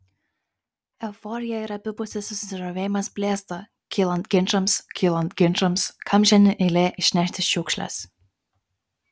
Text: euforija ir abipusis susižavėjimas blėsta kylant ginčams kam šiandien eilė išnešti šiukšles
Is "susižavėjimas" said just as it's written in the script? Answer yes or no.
yes